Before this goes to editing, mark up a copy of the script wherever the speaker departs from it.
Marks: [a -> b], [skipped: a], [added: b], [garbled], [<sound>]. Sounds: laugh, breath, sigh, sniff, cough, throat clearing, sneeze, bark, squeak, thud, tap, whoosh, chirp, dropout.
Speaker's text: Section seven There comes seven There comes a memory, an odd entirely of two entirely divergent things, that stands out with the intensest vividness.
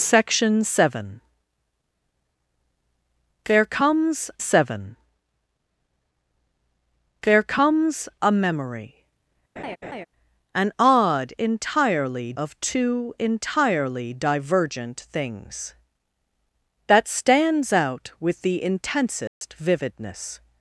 Section seven There comes seven There comes a memory, [laugh] an odd entirely of two entirely divergent things, that stands out with the intensest [dropout] vividness.